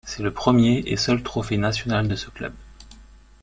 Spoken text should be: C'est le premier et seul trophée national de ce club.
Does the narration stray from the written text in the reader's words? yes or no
no